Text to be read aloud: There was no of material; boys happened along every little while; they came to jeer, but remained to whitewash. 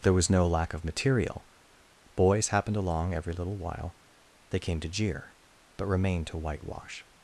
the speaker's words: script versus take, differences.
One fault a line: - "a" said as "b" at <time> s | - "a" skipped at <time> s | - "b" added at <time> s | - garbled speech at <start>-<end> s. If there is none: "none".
- "lack" added at 0.5 s